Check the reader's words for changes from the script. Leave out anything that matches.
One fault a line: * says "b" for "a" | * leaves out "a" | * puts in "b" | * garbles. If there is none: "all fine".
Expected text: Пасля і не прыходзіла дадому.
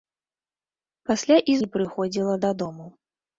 all fine